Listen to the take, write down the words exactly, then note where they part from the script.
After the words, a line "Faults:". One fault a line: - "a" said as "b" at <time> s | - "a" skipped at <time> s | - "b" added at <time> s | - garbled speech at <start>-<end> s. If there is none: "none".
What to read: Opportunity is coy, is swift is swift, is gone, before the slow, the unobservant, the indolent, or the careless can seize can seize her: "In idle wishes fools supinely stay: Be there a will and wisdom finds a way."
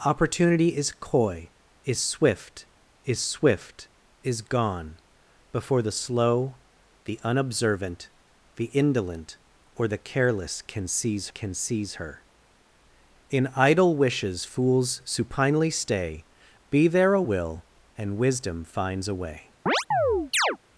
Opportunity is coy, is swift is swift, is gone, before the slow, the unobservant, the indolent, or the careless can seize can seize her: "In idle wishes fools supinely stay: Be there a will and wisdom finds a way."
Faults:
none